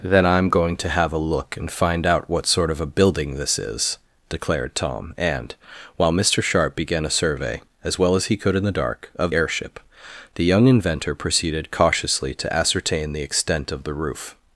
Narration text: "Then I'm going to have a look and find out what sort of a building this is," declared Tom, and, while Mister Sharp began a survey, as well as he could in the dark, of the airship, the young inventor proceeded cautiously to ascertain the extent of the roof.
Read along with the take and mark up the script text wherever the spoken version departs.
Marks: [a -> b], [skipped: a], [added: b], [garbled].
"Then I'm going to have a look and find out what sort of a building this is," declared Tom, and, while Mister Sharp began a survey, as well as he could in the dark, of [skipped: the] airship, the young inventor proceeded cautiously to ascertain the extent of the roof.